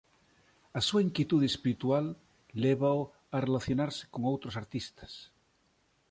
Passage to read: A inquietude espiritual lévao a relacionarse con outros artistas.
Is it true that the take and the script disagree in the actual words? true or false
true